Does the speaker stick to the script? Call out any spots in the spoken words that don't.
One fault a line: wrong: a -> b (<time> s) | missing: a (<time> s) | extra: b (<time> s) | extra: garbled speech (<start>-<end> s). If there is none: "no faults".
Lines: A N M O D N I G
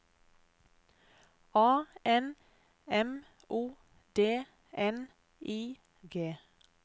no faults